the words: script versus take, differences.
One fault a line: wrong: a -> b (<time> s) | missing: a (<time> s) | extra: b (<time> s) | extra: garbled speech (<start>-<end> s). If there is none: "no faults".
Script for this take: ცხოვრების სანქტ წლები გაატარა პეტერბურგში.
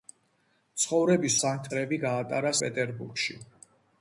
no faults